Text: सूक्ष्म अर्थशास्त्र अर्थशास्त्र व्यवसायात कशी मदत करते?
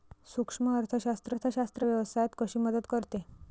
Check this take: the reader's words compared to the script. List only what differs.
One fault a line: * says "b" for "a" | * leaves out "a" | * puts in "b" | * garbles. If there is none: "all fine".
all fine